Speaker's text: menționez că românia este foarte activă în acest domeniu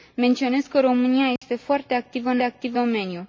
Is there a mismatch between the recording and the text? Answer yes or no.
yes